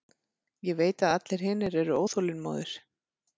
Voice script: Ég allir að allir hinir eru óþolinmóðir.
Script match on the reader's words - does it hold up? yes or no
no